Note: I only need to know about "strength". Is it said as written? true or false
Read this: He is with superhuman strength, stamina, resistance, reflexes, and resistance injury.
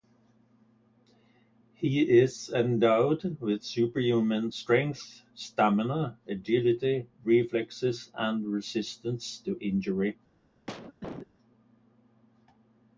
true